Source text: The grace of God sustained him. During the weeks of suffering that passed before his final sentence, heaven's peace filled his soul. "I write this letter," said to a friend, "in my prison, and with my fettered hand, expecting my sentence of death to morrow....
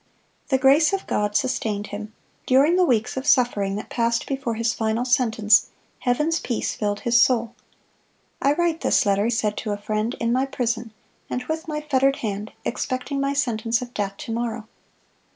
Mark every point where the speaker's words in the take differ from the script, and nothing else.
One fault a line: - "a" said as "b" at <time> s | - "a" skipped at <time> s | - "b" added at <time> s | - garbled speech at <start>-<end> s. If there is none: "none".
none